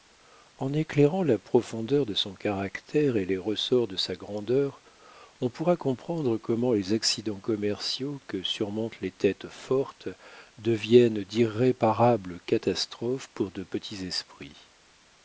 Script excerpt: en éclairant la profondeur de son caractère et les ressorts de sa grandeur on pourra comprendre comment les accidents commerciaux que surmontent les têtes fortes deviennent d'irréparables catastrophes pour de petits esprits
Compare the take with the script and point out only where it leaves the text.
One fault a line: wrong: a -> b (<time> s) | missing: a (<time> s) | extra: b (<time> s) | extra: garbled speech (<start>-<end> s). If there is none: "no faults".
no faults